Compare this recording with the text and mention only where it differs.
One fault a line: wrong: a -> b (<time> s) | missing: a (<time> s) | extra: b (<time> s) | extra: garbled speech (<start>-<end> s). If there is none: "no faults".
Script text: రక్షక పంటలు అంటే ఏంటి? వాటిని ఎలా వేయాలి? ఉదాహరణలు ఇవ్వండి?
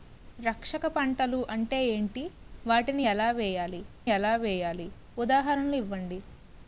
extra: ఎలా వేయాలి (4.1 s)